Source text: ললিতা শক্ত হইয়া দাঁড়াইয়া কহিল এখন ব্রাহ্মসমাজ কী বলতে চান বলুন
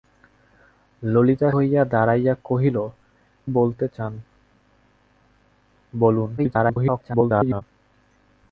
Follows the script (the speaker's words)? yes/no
no